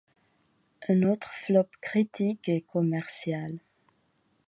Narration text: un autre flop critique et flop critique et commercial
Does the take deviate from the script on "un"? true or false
false